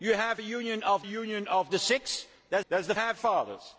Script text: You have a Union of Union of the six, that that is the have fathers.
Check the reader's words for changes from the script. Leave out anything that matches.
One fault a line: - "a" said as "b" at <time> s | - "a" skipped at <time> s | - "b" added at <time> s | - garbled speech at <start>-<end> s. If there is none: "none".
none